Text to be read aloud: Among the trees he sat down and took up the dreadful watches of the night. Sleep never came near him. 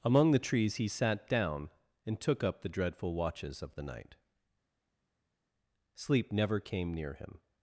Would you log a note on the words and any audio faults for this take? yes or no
no